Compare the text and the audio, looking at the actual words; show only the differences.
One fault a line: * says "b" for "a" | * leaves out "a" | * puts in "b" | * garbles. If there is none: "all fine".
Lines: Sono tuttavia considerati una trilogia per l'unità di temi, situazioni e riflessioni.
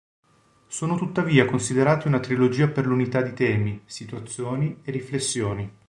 all fine